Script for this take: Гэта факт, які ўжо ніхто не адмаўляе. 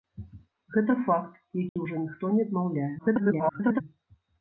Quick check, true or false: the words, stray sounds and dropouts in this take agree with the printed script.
false